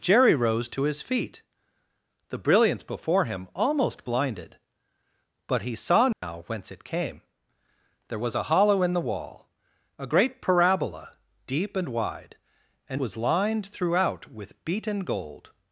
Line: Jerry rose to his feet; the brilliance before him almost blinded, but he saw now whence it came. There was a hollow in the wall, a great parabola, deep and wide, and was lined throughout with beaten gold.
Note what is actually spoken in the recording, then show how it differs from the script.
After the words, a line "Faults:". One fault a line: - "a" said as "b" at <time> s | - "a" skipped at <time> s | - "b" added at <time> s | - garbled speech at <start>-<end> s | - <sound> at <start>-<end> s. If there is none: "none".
Jerry rose to his feet; the brilliance before him almost blinded, but he saw now whence it came. There was a hollow in the wall, a great parabola, deep and wide, and was lined throughout with beaten gold.
Faults:
- dropout at 6.1-6.2 s